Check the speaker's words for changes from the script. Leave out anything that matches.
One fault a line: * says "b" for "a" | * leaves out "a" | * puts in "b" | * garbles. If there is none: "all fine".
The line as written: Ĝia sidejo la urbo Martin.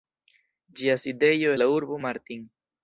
all fine